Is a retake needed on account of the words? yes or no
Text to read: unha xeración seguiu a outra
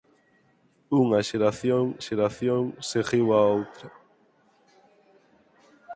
yes